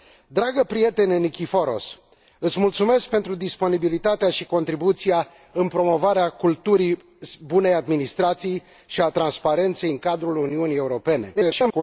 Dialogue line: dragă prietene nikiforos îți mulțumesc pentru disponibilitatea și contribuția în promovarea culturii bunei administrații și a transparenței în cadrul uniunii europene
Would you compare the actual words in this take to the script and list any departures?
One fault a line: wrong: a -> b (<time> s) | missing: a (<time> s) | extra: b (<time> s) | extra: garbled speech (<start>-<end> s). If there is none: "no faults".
extra: garbled speech (11.4-11.8 s)